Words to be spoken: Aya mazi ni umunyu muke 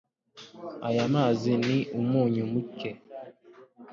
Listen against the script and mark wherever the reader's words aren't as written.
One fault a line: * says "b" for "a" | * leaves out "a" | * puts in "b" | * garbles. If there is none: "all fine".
all fine